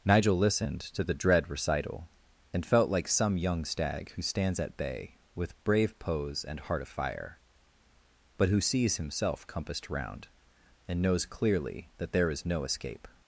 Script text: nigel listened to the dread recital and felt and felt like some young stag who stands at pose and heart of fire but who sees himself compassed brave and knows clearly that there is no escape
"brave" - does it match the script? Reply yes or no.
no